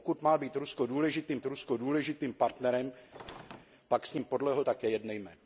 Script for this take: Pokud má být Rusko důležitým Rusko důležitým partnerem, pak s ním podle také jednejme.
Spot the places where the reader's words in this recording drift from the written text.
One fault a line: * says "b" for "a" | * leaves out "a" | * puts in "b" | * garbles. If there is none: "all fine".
all fine